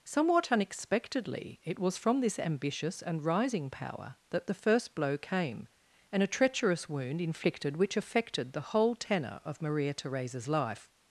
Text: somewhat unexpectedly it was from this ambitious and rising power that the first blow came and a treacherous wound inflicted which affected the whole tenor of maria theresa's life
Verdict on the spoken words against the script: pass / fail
pass